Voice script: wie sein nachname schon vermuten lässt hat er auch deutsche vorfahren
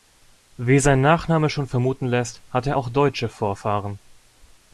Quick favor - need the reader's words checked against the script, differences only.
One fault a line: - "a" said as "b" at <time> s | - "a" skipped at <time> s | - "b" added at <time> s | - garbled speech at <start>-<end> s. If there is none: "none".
none